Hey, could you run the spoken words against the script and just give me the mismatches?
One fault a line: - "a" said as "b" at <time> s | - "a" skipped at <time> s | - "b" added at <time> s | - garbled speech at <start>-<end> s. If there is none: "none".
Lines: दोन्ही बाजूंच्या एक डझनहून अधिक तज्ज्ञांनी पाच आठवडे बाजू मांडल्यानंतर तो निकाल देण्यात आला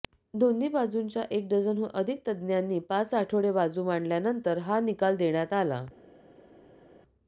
- "तो" said as "हा" at 4.6 s